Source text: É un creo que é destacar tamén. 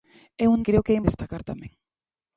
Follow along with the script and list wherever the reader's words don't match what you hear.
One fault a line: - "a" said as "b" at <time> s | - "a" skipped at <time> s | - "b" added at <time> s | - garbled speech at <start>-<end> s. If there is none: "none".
none